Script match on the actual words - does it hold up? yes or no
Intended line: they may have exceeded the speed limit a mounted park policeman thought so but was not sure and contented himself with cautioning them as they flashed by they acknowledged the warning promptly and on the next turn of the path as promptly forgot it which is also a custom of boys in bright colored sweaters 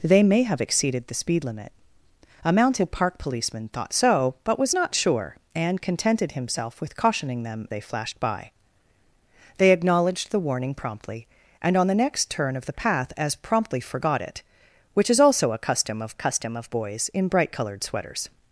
no